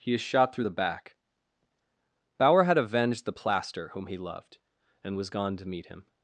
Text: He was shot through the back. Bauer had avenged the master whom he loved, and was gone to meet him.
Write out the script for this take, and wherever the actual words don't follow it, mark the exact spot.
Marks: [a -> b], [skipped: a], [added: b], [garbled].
He [was -> is] shot through the back. Bauer had avenged the [master -> plaster] whom he loved, and was gone to meet him.